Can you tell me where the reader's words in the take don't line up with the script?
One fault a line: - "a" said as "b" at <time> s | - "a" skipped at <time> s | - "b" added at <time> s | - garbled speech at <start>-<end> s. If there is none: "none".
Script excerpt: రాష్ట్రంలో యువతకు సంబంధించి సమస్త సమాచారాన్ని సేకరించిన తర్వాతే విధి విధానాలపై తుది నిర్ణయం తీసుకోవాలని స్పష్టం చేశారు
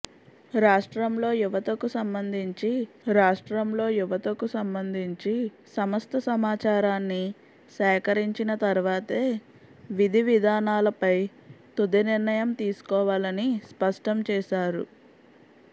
- "రాష్ట్రంలో యువతకు సంబంధించి" added at 3.1 s